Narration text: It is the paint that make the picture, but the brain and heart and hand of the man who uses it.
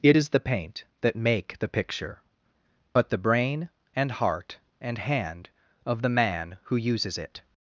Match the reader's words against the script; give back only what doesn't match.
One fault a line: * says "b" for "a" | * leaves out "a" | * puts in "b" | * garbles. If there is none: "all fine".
all fine